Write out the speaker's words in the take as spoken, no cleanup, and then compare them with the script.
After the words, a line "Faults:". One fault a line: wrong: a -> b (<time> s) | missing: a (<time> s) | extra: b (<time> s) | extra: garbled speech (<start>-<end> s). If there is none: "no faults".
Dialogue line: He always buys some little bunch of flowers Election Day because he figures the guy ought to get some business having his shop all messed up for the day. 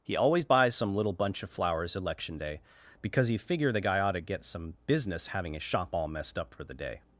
He always buys some little bunch of flowers Election Day because he figure the guy ought to get some business having his shop all messed up for the day.
Faults:
wrong: figures -> figure (3.4 s)